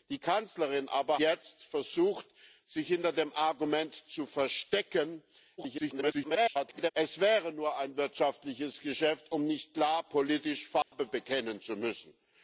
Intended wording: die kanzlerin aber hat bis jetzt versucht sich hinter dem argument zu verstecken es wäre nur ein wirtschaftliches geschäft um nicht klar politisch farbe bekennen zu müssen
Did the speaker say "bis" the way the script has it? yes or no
no